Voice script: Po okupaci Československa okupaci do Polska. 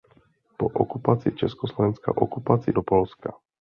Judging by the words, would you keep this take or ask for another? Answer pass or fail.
pass